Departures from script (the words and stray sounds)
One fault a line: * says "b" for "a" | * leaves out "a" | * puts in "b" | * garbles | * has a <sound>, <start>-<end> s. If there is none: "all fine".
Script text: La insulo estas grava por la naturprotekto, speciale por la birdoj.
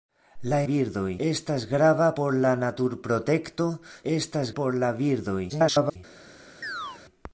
* says "birdoj" for "insulo"
* says "estas" for "speciale"
* garbles
* has a chirp, 6.6-7.0 s